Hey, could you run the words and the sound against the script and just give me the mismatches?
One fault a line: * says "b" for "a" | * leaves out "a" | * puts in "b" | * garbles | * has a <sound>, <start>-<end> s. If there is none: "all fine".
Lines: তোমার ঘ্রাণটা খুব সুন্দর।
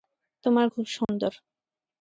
* leaves out "ঘ্রাণটা"
* has a dropout, 1.0-1.1 s